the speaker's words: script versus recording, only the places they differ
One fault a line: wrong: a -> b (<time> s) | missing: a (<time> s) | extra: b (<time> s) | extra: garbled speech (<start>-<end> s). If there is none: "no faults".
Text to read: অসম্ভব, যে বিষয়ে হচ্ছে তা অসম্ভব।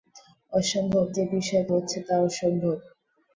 no faults